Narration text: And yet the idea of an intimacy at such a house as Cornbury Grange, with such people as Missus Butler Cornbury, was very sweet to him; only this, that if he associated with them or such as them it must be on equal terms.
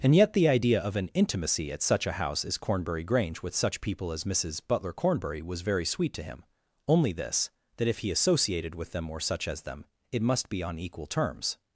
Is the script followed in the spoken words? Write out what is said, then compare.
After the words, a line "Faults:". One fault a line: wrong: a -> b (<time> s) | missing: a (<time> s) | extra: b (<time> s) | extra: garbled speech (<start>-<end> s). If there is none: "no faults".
And yet the idea of an intimacy at such a house as Cornbury Grange, with such people as Missus Butler Cornbury, was very sweet to him; only this, that if he associated with them or such as them it must be on equal terms.
Faults:
no faults